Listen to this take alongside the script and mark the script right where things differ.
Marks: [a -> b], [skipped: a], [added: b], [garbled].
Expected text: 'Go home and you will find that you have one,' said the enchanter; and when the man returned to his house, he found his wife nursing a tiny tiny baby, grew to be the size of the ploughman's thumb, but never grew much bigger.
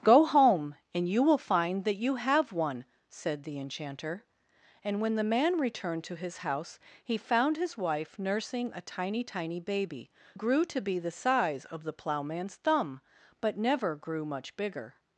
'Go home and you will find that you have one,' said the enchanter; and when the man returned to his house, he found his wife nursing a tiny tiny baby, grew to be the size of the ploughman's thumb, but never grew much bigger.